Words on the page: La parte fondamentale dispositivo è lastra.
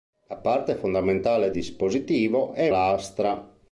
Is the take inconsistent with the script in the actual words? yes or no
no